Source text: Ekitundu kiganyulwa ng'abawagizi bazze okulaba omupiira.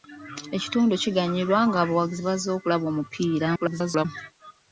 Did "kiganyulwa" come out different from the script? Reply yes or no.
no